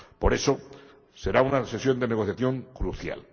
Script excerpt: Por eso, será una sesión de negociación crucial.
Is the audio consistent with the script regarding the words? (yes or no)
yes